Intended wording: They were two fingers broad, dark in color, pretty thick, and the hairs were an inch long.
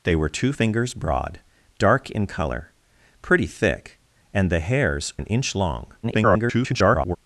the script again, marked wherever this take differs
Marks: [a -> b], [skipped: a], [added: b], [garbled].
They were two fingers broad, dark in color, pretty thick, and the hairs [skipped: were] an inch long. [garbled]